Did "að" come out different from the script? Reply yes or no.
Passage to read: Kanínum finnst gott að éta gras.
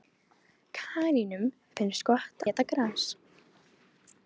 yes